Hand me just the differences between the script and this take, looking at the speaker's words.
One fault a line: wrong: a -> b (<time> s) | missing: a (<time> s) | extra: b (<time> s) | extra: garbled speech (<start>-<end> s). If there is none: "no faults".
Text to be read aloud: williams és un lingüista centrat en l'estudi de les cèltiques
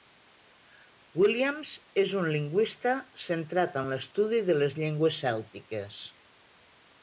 extra: llengües (4.8 s)